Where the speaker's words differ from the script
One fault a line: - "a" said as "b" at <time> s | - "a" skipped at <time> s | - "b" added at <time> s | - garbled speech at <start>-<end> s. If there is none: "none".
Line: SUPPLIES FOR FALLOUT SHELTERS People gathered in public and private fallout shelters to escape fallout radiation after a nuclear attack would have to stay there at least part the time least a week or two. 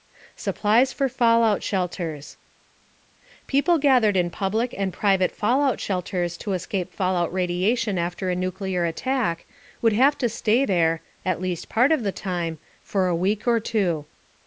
- "of" added at 11.9 s
- "least" said as "for" at 12.8 s